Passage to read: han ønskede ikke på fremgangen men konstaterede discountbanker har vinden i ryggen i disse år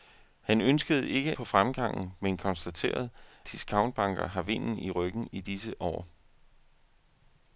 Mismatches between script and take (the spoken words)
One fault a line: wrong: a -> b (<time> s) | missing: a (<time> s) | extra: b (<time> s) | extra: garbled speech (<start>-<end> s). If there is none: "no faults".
no faults